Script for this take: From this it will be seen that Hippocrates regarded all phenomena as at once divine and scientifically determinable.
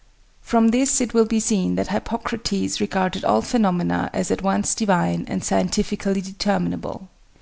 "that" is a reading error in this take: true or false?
false